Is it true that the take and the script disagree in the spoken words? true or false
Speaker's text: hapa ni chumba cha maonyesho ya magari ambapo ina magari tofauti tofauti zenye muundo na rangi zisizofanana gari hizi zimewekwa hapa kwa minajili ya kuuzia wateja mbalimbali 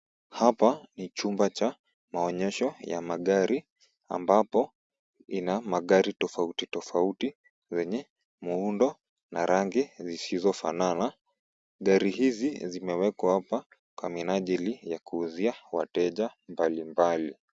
false